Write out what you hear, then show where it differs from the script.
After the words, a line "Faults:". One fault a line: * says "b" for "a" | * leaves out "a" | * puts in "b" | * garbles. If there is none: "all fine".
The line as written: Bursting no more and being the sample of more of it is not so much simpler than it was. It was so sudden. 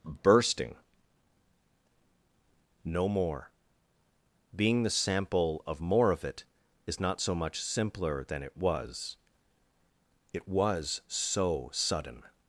Bursting no more being the sample of more of it is not so much simpler than it was. It was so sudden.
Faults:
* leaves out "and"